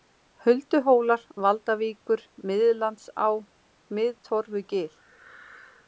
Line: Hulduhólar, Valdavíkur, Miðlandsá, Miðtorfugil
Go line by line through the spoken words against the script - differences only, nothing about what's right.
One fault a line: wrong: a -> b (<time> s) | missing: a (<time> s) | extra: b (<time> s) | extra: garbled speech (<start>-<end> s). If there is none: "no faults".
no faults